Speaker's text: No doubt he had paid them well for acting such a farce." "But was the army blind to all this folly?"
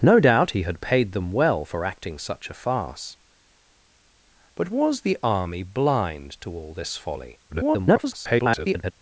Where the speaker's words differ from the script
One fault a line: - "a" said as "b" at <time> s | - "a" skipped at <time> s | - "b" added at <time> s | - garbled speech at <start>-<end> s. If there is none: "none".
- garbled speech at 7.5-8.9 s